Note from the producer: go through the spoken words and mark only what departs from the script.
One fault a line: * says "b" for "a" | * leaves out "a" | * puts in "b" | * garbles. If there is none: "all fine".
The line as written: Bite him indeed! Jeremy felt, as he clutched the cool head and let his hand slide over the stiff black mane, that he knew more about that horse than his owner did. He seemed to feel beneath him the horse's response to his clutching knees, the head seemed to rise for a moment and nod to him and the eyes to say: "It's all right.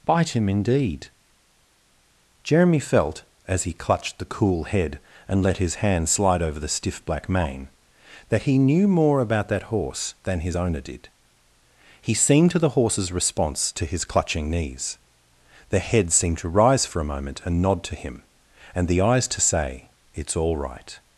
* leaves out "feel beneath him"